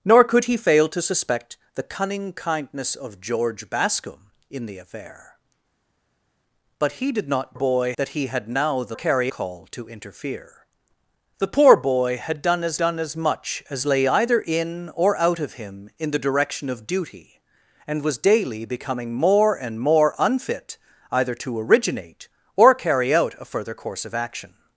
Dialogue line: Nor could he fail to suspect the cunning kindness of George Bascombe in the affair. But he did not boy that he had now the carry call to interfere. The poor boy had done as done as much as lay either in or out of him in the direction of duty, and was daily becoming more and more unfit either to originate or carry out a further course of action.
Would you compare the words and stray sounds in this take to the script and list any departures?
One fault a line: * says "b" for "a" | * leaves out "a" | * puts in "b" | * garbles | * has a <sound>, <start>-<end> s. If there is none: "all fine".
all fine